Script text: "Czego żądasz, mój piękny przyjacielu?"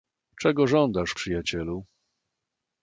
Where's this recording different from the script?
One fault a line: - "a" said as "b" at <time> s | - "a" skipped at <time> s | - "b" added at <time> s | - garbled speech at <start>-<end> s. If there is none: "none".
- "mój piękny" skipped at 1.2 s